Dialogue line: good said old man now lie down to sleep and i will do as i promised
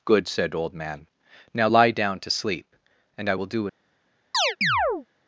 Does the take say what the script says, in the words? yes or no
no